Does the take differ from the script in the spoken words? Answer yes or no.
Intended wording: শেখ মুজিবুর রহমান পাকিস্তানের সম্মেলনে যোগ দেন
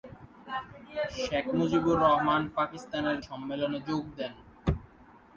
no